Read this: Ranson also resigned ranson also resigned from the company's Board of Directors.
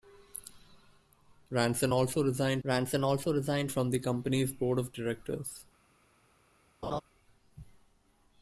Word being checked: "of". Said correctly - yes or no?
yes